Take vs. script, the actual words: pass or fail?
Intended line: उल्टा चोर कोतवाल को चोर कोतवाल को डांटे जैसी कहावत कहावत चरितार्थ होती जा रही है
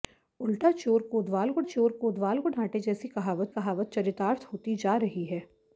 pass